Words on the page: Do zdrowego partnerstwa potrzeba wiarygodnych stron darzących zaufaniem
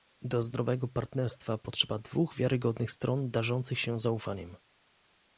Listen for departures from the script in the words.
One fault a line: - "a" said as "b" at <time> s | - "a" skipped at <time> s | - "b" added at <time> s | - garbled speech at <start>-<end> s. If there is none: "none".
- "dwóch" added at 2.0 s
- "się" added at 3.8 s